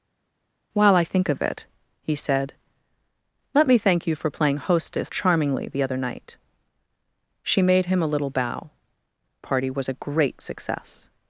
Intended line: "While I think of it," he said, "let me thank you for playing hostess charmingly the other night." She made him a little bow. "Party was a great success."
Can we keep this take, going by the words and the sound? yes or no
yes